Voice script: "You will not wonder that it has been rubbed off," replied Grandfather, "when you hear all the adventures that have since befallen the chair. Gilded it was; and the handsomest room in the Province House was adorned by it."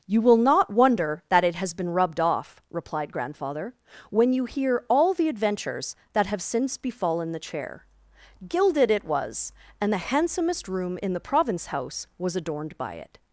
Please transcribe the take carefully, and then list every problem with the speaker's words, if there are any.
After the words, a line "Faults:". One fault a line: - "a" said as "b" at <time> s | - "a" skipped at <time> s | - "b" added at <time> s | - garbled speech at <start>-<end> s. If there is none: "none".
"You will not wonder that it has been rubbed off," replied Grandfather, "when you hear all the adventures that have since befallen the chair. Gilded it was; and the handsomest room in the Province House was adorned by it."
Faults:
none